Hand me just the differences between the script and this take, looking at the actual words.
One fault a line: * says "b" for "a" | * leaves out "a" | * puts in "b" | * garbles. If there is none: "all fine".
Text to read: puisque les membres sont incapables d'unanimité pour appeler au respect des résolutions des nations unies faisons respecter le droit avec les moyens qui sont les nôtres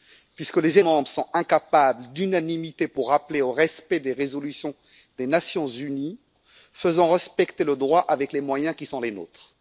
all fine